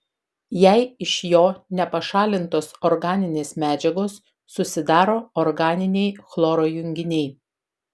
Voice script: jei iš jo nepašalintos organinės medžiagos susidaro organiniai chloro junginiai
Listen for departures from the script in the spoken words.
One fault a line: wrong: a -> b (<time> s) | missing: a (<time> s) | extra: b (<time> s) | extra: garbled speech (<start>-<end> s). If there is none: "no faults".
no faults